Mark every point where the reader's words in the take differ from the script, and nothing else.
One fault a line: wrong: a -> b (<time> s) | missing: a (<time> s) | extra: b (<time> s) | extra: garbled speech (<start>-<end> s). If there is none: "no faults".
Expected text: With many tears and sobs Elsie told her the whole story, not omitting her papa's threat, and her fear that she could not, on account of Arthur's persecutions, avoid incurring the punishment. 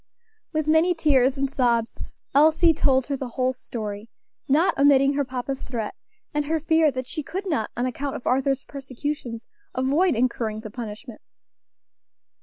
no faults